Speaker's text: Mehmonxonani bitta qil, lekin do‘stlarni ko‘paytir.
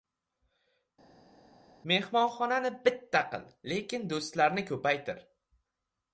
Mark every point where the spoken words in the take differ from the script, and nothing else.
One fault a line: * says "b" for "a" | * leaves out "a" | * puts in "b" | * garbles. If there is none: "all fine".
all fine